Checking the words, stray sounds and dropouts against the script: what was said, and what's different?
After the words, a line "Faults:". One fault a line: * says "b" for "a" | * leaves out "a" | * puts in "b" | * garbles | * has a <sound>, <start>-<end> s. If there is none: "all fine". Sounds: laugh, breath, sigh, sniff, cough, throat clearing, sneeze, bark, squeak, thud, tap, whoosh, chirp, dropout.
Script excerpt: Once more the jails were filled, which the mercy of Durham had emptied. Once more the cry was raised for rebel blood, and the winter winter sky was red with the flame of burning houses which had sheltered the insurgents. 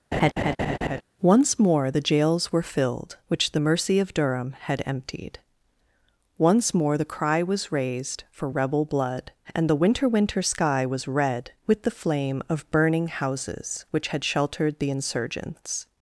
Once more the jails were filled, which the mercy of Durham had emptied. Once more the cry was raised for rebel blood, and the winter winter sky was red with the flame of burning houses which had sheltered the insurgents.
Faults:
* has a laugh, 0.1-1.0 s